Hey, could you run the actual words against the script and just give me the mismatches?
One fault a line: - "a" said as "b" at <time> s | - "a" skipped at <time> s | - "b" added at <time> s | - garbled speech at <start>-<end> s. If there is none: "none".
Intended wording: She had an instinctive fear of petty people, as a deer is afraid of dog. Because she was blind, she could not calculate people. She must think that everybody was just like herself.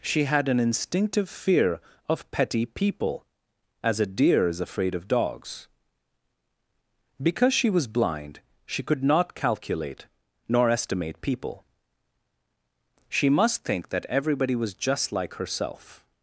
- "dog" said as "dogs" at 5.1 s
- "nor estimate" added at 10.5 s